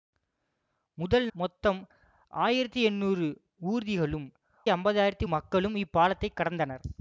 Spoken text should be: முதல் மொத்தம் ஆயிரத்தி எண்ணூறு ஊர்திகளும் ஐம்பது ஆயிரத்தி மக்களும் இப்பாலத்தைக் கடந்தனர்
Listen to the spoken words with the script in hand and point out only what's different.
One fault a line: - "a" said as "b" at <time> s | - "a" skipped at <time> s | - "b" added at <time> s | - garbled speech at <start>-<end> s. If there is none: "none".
none